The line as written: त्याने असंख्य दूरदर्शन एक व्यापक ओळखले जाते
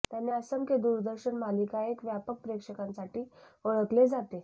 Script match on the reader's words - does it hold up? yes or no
no